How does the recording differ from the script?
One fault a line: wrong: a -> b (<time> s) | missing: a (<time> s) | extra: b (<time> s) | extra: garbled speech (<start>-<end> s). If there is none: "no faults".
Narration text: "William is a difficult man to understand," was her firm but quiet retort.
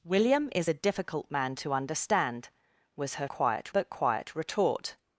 wrong: firm -> quiet (3.3 s)